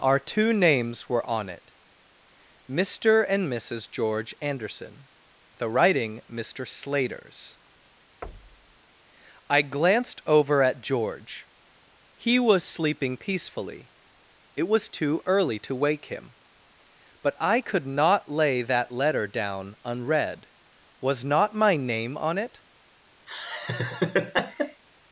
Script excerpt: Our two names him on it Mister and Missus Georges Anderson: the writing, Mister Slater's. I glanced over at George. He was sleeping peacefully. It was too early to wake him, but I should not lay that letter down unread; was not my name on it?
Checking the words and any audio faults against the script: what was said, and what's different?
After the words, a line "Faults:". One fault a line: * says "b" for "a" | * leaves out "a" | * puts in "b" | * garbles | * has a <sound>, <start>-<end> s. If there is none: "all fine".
Our two names were on it Mister and Missus George Anderson: the writing, Mister Slater's. I glanced over at George. He was sleeping peacefully. It was too early to wake him, but I could not lay that letter down unread; was not my name on it?
Faults:
* says "were" for "him"
* says "George" for "Georges"
* has a thud, 8.2-8.8 s
* says "could" for "should"
* has a laugh, 23.3-24.8 s